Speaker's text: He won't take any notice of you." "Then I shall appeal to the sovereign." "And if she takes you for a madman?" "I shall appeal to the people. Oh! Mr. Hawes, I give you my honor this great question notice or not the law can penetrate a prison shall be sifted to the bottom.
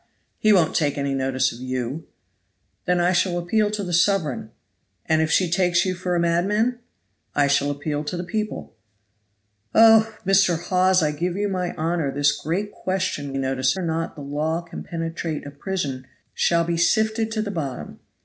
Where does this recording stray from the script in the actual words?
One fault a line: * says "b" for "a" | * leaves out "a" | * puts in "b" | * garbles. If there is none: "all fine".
all fine